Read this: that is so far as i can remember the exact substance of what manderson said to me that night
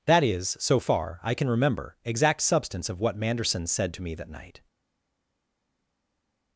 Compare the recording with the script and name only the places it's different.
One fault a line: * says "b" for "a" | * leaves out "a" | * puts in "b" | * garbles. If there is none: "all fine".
* leaves out "as"
* leaves out "the"